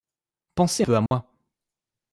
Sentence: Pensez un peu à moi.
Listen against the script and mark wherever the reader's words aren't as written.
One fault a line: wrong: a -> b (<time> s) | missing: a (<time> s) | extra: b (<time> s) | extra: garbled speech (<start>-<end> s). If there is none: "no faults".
missing: un (0.8 s)